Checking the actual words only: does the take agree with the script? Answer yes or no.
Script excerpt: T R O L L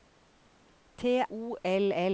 no